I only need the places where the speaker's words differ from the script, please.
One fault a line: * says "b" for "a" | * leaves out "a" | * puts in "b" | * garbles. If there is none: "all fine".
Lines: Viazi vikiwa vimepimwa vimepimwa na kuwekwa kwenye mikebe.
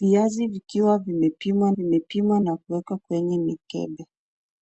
all fine